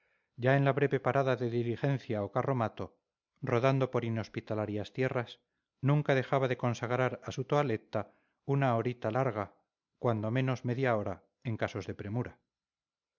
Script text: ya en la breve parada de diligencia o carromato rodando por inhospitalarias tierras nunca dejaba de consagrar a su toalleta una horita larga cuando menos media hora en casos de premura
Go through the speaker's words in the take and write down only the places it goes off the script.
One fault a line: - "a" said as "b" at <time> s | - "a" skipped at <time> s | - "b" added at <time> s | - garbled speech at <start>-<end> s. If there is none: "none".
none